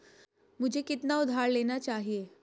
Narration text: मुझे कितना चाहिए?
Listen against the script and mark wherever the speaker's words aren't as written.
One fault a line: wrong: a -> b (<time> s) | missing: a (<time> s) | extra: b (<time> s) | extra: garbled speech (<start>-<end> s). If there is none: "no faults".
extra: उधार लेना (1.2 s)